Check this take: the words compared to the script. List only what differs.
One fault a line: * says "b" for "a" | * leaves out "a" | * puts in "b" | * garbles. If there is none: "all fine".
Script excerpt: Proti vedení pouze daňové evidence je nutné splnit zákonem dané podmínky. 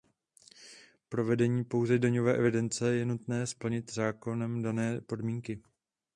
* says "Pro" for "Proti"